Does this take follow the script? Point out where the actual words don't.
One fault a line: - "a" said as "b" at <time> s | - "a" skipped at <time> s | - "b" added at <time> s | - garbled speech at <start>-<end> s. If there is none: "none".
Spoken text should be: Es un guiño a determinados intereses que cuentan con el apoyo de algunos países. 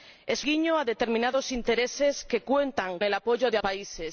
- "un" skipped at 0.5 s
- "con" skipped at 3.0 s
- "algunos" skipped at 3.6 s